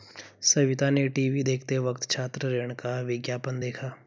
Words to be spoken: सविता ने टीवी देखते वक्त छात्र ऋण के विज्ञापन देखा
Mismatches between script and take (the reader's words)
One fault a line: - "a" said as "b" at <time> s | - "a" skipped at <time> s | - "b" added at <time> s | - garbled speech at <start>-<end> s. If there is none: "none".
- "के" said as "का" at 2.7 s